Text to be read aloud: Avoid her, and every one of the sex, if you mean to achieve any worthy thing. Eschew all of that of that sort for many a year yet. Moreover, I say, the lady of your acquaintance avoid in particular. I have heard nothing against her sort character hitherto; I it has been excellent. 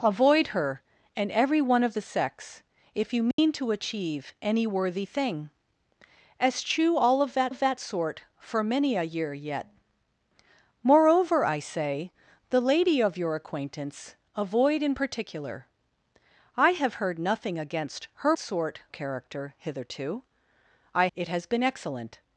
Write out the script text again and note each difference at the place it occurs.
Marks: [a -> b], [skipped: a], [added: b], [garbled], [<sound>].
Avoid her, and every one of the sex, if you mean [dropout] to achieve any worthy thing. Eschew all of that of that sort for many a year yet. Moreover, I say, the lady of your acquaintance avoid in particular. I have heard nothing against her sort character hitherto; I it has been excellent.